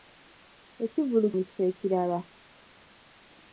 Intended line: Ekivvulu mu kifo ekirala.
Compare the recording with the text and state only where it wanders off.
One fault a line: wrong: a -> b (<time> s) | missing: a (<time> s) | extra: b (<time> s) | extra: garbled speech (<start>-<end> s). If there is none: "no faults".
no faults